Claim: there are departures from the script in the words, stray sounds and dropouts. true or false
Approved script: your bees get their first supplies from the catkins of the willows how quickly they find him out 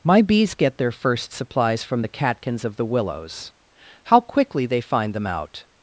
true